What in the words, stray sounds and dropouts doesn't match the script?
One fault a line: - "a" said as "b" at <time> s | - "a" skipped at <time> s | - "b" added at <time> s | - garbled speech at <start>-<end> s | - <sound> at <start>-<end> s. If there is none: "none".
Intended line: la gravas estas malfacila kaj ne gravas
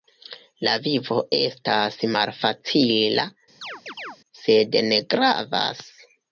- "gravas" said as "vivo" at 0.8 s
- chirp at 3.6-4.2 s
- "kaj" said as "sed" at 4.4 s